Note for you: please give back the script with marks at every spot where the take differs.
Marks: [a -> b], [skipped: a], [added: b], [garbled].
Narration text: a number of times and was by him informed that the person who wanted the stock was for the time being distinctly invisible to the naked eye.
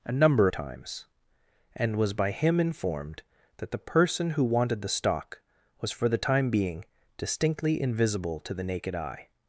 a number [skipped: of] times and was by him informed that the person who wanted the stock was for the time being distinctly invisible to the naked eye.